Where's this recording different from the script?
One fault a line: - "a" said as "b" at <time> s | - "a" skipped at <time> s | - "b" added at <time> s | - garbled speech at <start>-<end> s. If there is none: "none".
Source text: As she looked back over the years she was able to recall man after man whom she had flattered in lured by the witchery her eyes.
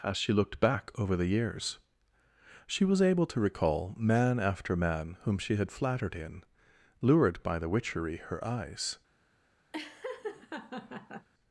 none